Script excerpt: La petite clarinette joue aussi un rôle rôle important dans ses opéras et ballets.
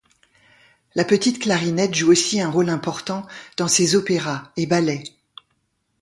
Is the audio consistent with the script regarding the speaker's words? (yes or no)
no